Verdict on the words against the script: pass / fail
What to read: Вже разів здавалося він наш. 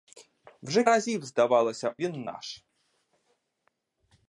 pass